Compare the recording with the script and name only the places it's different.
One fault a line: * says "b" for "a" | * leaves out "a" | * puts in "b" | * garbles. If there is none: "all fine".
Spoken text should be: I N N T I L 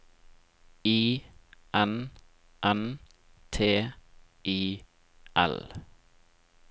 all fine